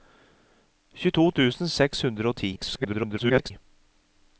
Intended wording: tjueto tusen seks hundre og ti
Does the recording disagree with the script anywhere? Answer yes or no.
yes